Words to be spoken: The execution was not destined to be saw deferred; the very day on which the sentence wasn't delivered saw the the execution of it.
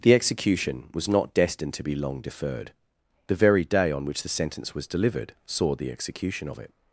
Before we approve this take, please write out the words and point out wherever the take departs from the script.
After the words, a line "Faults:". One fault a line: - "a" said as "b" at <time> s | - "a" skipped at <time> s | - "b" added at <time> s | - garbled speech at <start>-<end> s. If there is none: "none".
The execution was not destined to be long deferred; the very day on which the sentence was delivered saw the execution of it.
Faults:
- "saw" said as "long" at 1.9 s
- "wasn't" said as "was" at 4.7 s
- "the" skipped at 5.9 s